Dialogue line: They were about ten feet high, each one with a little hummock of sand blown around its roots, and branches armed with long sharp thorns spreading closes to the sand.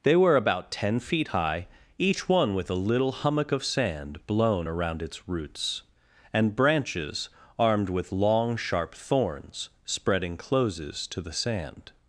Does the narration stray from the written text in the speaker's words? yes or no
no